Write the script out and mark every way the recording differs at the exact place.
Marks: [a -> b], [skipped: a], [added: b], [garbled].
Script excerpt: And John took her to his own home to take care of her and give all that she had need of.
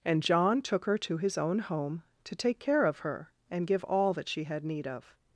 And John took her to his own home to take care of her and give all that she had need of.